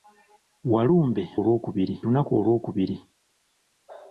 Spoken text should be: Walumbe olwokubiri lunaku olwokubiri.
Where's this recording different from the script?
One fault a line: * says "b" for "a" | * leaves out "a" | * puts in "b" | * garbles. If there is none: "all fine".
all fine